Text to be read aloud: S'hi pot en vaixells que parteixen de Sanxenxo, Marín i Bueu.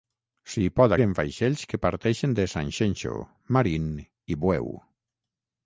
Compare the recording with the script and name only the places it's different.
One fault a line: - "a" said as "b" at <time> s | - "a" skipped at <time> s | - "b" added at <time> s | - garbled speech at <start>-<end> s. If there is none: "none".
none